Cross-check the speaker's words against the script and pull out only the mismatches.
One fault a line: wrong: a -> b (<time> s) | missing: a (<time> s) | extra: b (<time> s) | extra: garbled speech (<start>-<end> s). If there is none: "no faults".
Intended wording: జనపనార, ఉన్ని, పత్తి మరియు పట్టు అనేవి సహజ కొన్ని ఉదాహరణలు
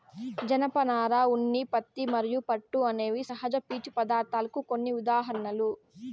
extra: పీచు పదార్ధాలకు (3.7 s)